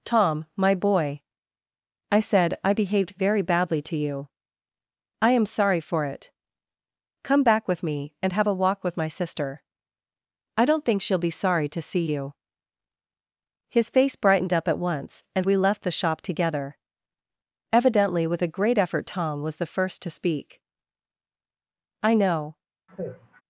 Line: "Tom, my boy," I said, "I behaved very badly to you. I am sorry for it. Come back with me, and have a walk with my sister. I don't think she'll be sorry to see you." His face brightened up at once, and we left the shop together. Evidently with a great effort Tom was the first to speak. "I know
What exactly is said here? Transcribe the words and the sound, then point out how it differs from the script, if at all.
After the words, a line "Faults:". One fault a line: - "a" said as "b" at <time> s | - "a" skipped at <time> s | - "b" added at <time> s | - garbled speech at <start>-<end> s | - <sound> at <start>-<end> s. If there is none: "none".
"Tom, my boy," I said, "I behaved very badly to you. I am sorry for it. Come back with me, and have a walk with my sister. I don't think she'll be sorry to see you." His face brightened up at once, and we left the shop together. Evidently with a great effort Tom was the first to speak. "I know
Faults:
- sigh at 22.9-23.4 s